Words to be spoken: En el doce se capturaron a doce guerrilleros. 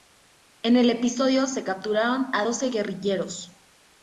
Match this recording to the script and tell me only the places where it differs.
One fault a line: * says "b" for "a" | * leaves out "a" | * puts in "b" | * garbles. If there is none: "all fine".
* says "episodio" for "doce"